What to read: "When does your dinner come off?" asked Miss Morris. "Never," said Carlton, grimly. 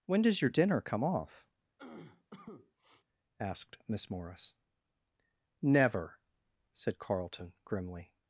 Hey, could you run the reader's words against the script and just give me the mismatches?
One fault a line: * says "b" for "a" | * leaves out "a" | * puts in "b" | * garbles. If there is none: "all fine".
all fine